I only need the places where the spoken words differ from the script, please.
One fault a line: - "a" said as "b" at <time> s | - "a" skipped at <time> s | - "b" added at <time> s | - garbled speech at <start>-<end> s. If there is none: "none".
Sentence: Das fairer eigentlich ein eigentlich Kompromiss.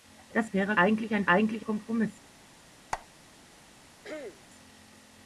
none